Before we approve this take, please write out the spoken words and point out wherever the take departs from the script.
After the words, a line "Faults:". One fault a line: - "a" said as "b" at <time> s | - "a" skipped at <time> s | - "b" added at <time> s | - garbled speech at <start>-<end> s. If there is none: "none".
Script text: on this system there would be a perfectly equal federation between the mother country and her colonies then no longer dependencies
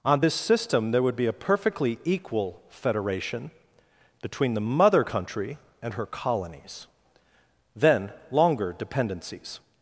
on this system there would be a perfectly equal federation between the mother country and her colonies then longer dependencies
Faults:
- "no" skipped at 8.1 s